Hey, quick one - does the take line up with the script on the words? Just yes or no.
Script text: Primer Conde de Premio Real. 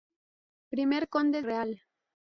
no